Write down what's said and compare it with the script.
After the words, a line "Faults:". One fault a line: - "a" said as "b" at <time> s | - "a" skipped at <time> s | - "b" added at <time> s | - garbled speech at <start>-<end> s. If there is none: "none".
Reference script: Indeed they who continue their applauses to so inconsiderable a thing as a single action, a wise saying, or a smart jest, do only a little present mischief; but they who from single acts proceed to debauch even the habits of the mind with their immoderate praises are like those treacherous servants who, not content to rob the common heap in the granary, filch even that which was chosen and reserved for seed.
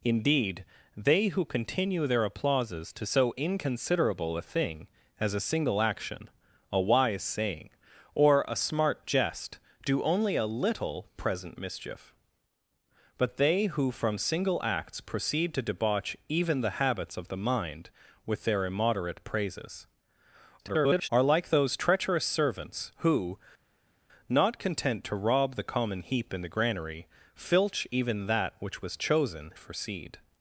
Indeed they who continue their applauses to so inconsiderable a thing as a single action, a wise saying, or a smart jest, do only a little present mischief; but they who from single acts proceed to debauch even the habits of the mind with their immoderate praises [garbled] are like those treacherous servants who, not content to rob the common heap in the granary, filch even that which was chosen for seed.
Faults:
- garbled speech at 20.6-21.1 s
- "and reserved" skipped at 29.5 s